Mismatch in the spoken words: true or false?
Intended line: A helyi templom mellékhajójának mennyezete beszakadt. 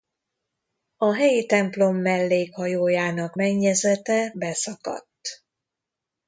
false